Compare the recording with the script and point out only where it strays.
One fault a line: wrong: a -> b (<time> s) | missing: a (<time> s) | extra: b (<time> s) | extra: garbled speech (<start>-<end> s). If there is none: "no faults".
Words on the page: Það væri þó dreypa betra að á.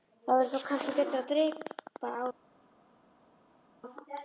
wrong: dreypa -> kannski (0.7 s)
extra: dreypa (1.3 s)